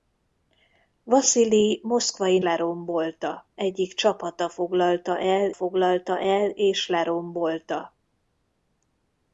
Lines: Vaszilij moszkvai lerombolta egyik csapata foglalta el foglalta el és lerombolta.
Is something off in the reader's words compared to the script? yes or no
no